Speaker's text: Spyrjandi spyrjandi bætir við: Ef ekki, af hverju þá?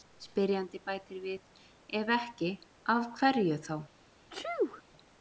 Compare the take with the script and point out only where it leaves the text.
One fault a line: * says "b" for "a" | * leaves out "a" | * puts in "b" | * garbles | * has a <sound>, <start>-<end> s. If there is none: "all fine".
* leaves out "spyrjandi"
* has a sneeze, 4.3-4.8 s